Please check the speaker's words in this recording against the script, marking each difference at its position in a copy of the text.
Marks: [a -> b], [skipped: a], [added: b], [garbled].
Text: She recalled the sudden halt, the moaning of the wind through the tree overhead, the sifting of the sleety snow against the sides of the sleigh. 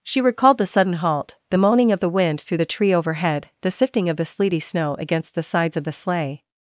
She recalled the sudden halt, the moaning of the wind through the tree overhead, the sifting of the sleety snow against the sides of the sleigh.